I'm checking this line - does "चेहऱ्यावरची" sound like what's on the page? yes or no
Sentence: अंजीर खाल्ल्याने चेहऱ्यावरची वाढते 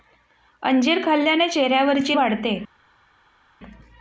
yes